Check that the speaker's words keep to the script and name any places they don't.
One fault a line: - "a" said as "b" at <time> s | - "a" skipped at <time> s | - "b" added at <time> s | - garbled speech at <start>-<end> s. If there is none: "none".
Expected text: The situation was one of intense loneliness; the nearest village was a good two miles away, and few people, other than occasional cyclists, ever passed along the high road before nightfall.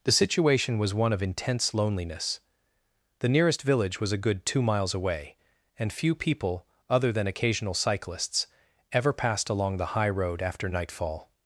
- "before" said as "after" at 10.4 s